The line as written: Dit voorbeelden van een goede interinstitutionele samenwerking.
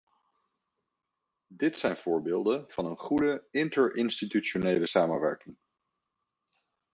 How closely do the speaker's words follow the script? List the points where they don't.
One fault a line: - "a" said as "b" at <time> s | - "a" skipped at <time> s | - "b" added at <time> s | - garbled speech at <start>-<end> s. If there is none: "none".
- "zijn" added at 1.8 s